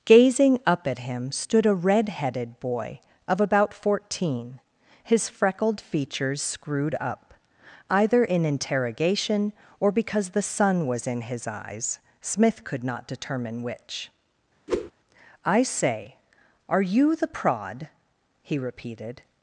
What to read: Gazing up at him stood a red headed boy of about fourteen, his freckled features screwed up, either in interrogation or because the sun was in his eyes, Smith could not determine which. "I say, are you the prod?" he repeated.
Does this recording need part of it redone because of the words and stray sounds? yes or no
yes